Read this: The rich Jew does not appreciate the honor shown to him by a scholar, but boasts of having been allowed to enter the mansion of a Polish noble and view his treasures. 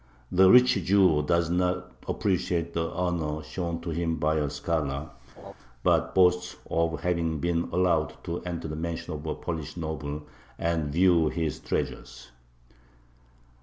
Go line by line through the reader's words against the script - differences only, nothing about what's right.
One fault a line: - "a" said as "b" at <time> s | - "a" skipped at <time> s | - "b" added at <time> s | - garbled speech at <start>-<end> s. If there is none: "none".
none